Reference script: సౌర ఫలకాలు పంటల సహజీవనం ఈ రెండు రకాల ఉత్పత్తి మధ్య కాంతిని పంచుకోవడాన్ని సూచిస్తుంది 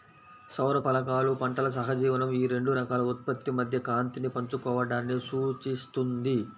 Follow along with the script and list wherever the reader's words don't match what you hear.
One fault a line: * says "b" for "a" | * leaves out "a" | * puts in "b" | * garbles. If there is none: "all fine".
all fine